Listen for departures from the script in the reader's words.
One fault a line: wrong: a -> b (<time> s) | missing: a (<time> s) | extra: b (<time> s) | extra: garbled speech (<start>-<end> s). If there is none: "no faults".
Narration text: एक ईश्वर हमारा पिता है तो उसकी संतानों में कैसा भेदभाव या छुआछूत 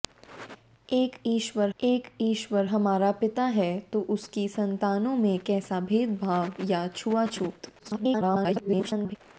extra: एक ईश्वर (1.8 s)
extra: garbled speech (7.8-9.2 s)